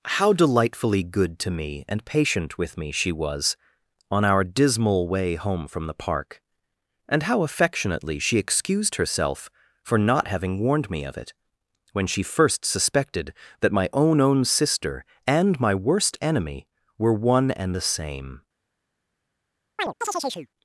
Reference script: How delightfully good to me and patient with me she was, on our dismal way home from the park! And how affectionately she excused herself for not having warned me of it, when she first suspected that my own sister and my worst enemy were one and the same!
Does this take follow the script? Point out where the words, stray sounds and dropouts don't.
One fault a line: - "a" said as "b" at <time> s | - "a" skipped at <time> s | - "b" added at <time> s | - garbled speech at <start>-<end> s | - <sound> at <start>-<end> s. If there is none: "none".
- "own" added at 14.2 s
- chirp at 19.8-20.5 s